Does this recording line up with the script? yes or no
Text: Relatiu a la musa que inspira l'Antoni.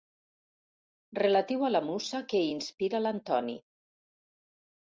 yes